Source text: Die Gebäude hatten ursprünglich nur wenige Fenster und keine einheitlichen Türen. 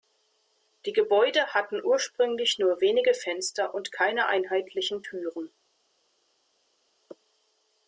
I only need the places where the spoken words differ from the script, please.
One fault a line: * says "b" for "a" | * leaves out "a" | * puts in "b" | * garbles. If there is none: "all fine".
all fine